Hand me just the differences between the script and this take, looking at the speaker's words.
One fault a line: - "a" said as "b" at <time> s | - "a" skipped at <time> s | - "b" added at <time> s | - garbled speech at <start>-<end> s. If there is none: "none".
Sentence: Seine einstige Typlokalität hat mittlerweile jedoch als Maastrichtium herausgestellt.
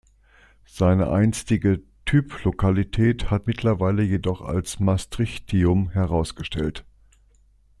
none